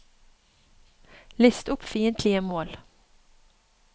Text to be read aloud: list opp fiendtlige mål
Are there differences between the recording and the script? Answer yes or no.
no